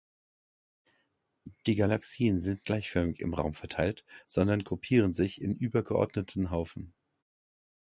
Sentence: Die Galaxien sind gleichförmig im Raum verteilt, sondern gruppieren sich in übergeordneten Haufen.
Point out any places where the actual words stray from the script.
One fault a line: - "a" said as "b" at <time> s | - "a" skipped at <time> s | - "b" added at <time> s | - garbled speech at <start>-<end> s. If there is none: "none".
none